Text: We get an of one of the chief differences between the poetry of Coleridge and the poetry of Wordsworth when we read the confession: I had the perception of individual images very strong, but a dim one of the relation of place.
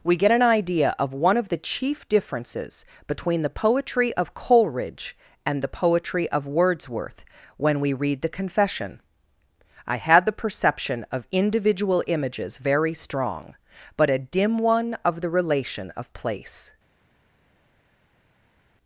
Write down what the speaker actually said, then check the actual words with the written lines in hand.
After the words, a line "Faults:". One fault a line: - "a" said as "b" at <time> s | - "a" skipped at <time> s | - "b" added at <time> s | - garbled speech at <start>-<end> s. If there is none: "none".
We get an idea of one of the chief differences between the poetry of Coleridge and the poetry of Wordsworth when we read the confession: I had the perception of individual images very strong, but a dim one of the relation of place.
Faults:
- "idea" added at 0.4 s